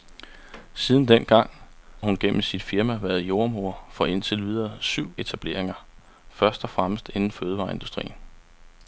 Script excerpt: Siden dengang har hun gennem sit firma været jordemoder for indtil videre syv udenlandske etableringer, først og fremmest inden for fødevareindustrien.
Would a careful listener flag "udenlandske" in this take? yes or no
yes